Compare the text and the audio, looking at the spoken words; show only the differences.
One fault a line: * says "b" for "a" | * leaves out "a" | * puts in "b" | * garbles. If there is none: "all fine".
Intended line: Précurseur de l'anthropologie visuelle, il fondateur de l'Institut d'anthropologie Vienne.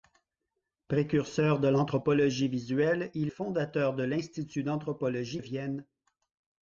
all fine